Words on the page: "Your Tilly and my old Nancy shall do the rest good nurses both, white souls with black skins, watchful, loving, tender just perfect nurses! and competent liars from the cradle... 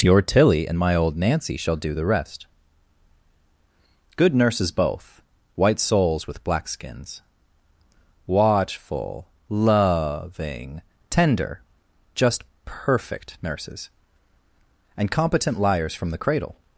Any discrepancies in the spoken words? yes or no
no